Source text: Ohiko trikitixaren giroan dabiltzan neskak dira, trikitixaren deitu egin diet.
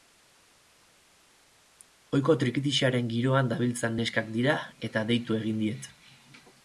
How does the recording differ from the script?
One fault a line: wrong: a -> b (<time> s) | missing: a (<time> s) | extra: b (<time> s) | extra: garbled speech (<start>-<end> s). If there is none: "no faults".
wrong: trikitixaren -> eta (4.9 s)